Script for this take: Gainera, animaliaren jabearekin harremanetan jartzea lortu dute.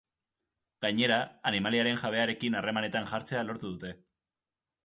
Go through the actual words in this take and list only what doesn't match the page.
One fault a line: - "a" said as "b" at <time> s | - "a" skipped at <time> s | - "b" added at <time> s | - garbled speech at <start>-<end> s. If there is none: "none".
none